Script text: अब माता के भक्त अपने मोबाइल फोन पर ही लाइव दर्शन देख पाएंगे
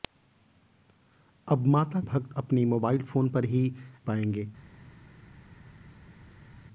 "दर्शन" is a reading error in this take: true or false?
true